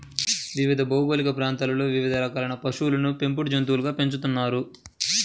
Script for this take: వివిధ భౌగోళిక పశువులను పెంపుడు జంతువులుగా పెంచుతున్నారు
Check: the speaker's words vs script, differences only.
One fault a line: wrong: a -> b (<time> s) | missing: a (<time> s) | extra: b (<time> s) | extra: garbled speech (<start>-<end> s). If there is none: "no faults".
extra: ప్రాంతాలలో వివిధ రకాలైన (1.4 s)